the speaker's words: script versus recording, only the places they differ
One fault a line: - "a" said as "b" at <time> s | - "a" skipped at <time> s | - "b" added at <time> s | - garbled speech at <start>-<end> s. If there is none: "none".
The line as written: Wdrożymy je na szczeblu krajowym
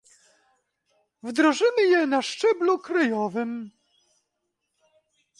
none